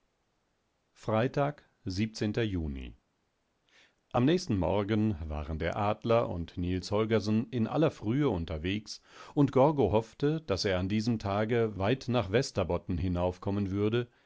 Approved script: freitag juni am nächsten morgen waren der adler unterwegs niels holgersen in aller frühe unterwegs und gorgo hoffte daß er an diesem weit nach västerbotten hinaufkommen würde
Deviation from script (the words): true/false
true